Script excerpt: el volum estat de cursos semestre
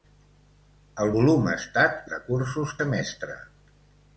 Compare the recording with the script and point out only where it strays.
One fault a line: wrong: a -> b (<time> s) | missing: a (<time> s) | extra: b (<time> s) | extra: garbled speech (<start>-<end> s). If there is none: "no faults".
no faults